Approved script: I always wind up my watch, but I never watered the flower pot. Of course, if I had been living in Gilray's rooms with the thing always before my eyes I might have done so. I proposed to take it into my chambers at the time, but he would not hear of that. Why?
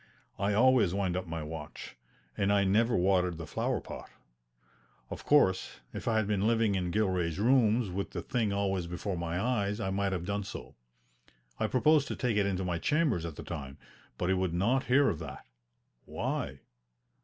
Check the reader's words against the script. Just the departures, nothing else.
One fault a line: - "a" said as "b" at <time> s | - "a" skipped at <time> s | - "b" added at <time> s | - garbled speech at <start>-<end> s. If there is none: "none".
- "but" said as "and" at 2.4 s